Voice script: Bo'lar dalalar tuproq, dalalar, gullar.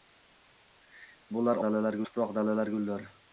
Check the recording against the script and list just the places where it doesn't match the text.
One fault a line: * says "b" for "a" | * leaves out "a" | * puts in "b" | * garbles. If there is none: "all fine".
all fine